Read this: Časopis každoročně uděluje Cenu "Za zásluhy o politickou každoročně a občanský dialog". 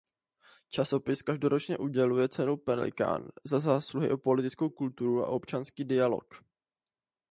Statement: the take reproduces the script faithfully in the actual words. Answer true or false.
false